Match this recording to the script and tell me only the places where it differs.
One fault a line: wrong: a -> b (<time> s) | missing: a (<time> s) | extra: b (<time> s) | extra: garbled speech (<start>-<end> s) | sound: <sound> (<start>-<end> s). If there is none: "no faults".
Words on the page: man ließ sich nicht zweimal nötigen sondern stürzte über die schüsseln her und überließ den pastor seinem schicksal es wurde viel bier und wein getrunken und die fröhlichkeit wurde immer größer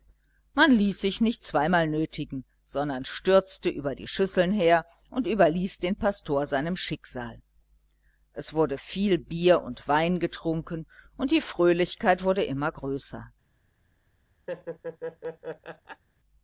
sound: laugh (14.5-16.0 s)